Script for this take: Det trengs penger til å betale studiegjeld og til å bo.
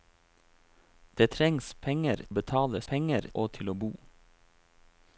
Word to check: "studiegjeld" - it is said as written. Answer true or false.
false